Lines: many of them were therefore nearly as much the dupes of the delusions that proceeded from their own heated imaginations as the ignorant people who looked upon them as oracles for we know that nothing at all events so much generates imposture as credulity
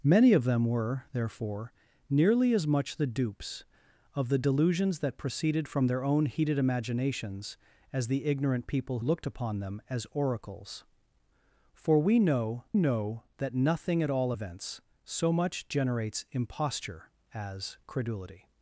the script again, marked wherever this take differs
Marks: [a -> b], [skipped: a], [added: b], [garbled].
many of them were therefore nearly as much the dupes of the delusions that proceeded from their own heated imaginations as the ignorant people [skipped: who] looked upon them as oracles for we know [added: know] that nothing at all events so much generates imposture as credulity